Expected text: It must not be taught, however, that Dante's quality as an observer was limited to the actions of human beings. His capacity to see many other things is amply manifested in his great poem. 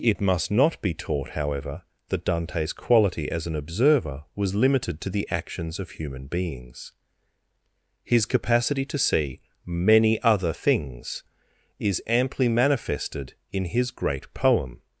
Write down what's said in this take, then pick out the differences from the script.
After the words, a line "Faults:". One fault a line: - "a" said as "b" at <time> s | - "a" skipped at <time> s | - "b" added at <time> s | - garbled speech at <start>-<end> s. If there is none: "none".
It must not be taught, however, that Dante's quality as an observer was limited to the actions of human beings. His capacity to see many other things is amply manifested in his great poem.
Faults:
none